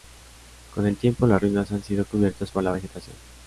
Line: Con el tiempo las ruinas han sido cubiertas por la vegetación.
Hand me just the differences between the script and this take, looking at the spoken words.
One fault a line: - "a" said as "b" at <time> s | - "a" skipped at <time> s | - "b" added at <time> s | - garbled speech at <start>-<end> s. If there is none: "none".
none